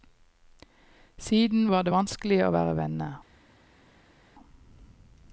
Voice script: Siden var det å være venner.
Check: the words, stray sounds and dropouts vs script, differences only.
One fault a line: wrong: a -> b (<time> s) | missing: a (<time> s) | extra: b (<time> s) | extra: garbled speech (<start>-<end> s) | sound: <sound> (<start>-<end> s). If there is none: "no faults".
extra: vanskelig (1.9 s)